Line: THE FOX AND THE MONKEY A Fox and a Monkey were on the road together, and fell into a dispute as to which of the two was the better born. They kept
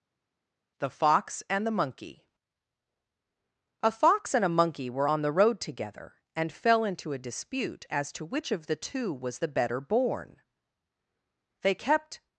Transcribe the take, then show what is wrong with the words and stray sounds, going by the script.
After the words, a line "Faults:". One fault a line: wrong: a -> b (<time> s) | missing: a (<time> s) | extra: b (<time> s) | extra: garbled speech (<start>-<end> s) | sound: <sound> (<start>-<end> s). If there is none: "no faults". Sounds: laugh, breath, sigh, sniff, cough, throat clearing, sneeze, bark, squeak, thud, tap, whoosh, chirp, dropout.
THE FOX AND THE MONKEY A Fox and a Monkey were on the road together, and fell into a dispute as to which of the two was the better born. They kept
Faults:
no faults